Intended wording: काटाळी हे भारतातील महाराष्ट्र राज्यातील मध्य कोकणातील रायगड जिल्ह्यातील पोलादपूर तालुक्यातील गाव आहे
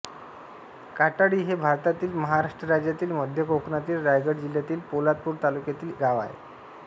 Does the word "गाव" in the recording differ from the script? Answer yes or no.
no